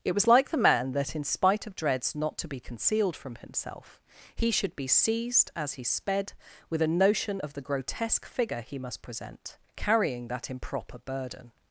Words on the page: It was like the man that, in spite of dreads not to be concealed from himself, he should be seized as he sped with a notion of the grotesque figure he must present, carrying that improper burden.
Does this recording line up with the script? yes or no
yes